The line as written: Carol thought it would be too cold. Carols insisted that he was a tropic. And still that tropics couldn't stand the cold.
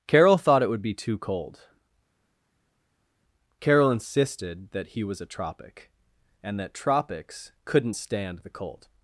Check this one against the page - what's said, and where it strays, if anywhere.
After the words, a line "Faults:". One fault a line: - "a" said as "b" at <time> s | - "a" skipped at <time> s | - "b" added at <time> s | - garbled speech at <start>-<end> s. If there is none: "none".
Carol thought it would be too cold. Carol insisted that he was a tropic. And that tropics couldn't stand the cold.
Faults:
- "Carols" said as "Carol" at 3.6 s
- "still" skipped at 6.6 s